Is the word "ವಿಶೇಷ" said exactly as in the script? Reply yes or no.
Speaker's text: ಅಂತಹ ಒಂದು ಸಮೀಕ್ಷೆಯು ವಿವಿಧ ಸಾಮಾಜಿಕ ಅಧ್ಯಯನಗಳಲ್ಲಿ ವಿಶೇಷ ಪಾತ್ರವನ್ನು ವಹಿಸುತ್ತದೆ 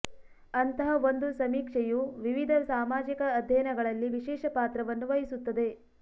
yes